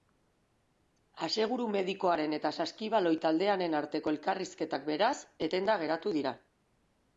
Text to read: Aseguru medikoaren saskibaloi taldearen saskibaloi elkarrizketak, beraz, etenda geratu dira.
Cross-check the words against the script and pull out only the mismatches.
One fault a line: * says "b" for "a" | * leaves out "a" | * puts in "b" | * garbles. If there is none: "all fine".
* puts in "eta"
* says "arteko" for "saskibaloi"